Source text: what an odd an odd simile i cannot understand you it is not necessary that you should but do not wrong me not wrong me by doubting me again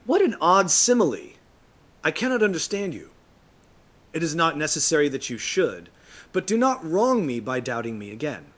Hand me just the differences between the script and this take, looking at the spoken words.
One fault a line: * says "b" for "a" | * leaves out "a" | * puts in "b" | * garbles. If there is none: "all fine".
* leaves out "an odd"
* leaves out "not wrong me"